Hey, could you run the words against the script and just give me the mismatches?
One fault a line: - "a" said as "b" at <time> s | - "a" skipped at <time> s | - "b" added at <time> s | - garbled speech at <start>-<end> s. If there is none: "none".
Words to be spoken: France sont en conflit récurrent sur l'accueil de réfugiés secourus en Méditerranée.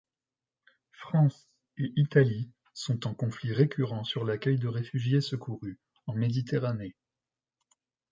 - "et Italie" added at 1.8 s